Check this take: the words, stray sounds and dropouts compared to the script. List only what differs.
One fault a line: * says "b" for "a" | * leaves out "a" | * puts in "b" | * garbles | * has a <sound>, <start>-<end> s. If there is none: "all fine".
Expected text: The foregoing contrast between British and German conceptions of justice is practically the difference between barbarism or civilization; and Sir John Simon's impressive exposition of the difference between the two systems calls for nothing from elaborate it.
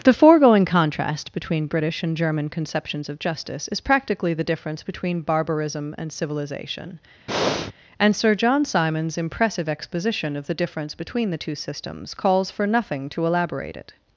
* says "and" for "or"
* has a breath, 7.3-7.7 s
* says "to" for "from"